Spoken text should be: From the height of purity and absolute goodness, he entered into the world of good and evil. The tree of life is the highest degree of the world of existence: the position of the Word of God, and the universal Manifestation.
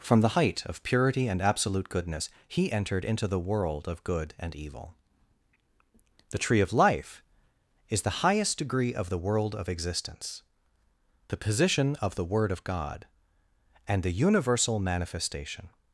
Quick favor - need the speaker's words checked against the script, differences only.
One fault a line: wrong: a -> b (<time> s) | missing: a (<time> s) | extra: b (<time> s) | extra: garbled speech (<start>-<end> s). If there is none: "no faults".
no faults